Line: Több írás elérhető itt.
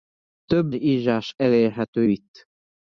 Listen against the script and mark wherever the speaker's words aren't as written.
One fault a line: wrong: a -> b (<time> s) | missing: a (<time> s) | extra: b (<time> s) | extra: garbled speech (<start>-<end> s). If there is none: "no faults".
no faults